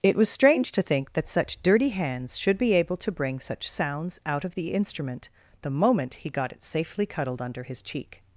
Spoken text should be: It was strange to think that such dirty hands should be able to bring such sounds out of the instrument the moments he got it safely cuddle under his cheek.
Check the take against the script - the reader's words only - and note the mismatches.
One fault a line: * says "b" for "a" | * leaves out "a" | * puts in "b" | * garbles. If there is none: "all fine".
* says "moment" for "moments"
* says "cuddled" for "cuddle"